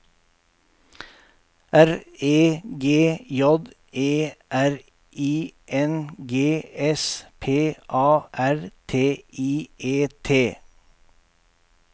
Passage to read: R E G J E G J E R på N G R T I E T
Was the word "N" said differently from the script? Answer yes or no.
yes